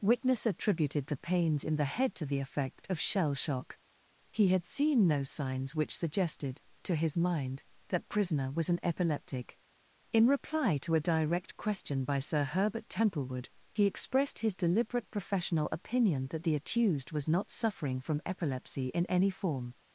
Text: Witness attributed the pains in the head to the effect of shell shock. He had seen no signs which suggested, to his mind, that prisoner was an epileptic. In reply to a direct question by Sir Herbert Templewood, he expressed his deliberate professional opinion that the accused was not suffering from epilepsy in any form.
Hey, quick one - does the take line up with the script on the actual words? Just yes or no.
yes